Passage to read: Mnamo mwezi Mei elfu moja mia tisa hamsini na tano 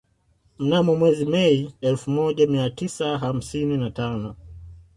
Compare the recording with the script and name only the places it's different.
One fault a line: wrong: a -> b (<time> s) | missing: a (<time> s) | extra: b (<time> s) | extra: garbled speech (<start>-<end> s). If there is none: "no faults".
no faults